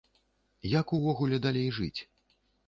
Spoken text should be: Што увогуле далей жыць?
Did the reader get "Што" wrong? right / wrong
wrong